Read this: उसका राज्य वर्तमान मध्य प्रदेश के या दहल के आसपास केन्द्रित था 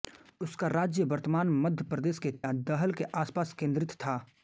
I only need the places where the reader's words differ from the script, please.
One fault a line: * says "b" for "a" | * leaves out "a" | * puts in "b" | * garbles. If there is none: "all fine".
all fine